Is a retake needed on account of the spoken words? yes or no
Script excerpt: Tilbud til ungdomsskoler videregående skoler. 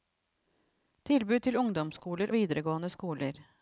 no